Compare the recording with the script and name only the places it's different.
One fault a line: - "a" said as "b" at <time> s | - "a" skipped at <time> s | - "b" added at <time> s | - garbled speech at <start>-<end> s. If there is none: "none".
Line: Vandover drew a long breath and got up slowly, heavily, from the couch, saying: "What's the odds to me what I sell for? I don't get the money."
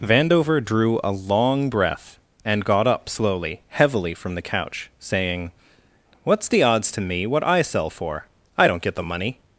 none